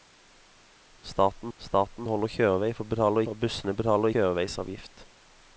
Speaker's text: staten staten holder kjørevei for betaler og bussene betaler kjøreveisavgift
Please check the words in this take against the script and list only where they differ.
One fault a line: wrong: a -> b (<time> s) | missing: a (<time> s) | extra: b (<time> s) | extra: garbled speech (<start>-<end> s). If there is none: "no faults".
no faults